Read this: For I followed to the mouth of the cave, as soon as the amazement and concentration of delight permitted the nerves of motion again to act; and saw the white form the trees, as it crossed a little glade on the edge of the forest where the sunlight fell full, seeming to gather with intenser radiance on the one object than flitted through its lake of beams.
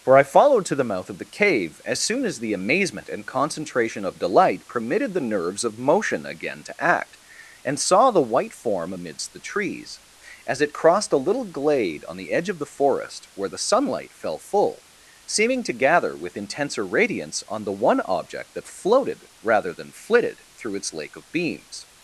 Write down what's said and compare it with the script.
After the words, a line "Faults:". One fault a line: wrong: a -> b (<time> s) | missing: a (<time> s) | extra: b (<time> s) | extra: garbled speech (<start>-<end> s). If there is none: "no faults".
For I followed to the mouth of the cave, as soon as the amazement and concentration of delight permitted the nerves of motion again to act; and saw the white form amidst the trees, as it crossed a little glade on the edge of the forest where the sunlight fell full, seeming to gather with intenser radiance on the one object that floated rather than flitted through its lake of beams.
Faults:
extra: amidst (8.9 s)
extra: that floated rather (18.5 s)